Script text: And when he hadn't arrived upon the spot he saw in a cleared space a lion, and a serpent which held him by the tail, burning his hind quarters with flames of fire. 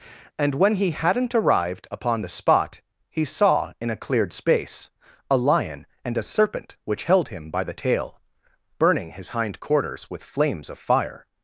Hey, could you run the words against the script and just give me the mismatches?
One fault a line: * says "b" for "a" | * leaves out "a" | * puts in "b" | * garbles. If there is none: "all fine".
all fine